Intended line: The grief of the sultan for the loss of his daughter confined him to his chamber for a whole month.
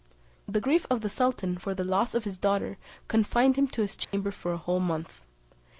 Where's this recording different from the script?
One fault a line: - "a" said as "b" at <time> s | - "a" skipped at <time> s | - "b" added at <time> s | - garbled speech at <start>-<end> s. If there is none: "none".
none